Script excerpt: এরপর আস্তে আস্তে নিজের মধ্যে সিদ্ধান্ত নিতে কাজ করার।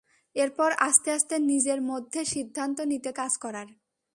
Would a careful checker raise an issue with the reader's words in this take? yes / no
no